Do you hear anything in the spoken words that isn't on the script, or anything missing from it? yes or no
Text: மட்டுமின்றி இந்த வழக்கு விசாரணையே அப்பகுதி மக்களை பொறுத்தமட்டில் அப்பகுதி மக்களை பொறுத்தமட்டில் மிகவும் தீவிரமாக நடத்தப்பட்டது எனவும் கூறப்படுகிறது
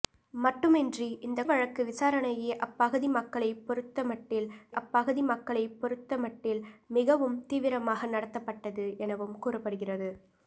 no